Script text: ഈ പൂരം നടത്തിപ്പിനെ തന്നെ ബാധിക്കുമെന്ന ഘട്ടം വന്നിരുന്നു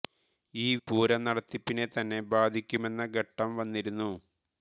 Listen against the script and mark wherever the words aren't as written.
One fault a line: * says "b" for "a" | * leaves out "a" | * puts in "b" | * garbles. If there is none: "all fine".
all fine